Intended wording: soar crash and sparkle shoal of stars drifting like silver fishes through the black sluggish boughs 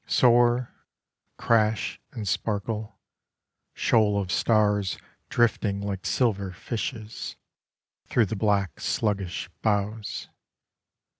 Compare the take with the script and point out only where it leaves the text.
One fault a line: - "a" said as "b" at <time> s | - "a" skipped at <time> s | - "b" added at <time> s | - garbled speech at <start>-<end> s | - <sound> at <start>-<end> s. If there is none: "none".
none